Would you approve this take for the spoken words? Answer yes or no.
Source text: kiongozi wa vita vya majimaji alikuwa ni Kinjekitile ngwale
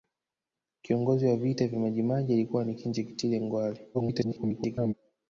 no